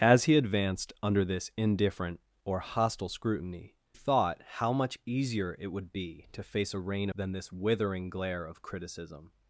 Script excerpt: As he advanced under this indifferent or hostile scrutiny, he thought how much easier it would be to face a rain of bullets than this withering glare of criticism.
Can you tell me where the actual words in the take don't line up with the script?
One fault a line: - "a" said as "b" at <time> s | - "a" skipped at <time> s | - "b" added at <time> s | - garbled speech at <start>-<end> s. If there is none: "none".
- "he" skipped at 3.8 s
- "of bullets" skipped at 7.1 s